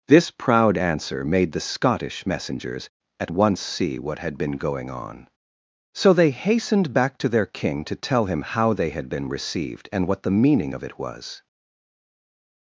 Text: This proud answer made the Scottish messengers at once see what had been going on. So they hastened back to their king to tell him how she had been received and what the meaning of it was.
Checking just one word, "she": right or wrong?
wrong